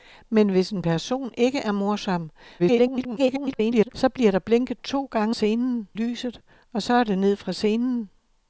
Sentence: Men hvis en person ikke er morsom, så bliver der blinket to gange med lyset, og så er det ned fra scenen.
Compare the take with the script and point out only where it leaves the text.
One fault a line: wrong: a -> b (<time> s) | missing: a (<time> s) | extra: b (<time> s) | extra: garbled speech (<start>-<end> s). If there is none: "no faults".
extra: garbled speech (2.6-3.9 s)
wrong: med -> scenen (5.3 s)